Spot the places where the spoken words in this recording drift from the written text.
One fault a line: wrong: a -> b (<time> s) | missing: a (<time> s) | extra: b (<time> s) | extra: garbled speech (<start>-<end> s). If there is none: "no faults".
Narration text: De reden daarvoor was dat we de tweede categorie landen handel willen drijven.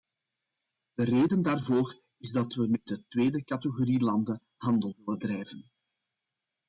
wrong: was -> is (2.2 s)
extra: met (2.7 s)